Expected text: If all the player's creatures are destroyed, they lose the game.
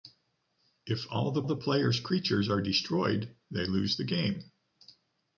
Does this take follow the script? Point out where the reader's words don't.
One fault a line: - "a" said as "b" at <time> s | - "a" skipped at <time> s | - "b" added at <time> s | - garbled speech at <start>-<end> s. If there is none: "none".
- "the" added at 1.4 s